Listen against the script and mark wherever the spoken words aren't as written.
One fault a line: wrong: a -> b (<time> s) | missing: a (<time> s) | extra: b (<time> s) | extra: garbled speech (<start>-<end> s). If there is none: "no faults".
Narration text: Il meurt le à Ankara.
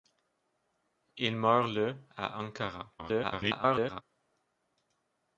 extra: garbled speech (3.0-4.0 s)